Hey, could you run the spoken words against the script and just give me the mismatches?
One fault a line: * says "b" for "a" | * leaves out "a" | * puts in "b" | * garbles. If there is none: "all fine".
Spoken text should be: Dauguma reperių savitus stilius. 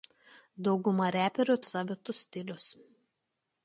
all fine